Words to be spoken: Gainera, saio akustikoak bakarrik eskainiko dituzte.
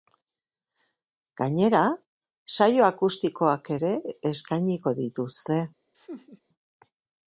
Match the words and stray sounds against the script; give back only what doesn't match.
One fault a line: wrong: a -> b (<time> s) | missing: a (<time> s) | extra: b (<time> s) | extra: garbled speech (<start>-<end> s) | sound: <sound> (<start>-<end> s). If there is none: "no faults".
wrong: bakarrik -> ere (3.8 s)
sound: laugh (5.9-6.4 s)